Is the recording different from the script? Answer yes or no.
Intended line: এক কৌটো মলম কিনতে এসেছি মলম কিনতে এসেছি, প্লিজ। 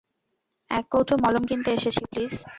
yes